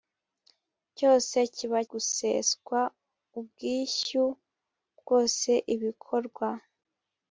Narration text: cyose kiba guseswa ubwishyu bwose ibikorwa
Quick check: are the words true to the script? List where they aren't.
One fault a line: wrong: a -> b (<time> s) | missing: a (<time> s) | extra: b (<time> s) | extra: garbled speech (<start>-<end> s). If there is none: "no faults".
no faults